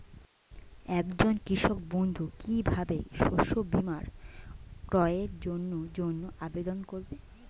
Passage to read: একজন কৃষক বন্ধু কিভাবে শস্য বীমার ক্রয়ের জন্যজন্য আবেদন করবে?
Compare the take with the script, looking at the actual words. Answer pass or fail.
pass